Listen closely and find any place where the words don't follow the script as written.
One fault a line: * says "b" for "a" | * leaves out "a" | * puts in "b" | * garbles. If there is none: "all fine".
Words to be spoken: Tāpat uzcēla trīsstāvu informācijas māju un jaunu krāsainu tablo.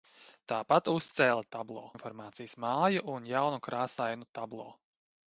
* says "tablo" for "trīsstāvu"